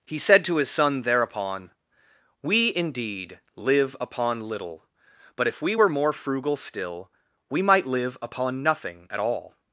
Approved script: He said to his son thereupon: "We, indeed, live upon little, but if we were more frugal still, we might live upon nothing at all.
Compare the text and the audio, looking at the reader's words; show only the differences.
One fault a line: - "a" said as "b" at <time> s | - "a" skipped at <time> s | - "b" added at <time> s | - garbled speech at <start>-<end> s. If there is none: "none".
none